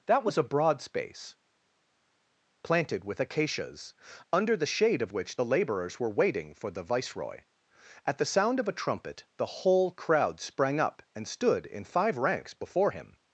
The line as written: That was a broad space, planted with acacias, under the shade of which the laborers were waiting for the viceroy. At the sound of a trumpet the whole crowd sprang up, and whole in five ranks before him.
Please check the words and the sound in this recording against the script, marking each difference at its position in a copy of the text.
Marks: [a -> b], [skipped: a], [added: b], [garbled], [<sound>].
That was a broad space, planted with acacias, under the shade of which the laborers were waiting for the viceroy. At the sound of a trumpet the whole crowd sprang up, and [whole -> stood] in five ranks before him.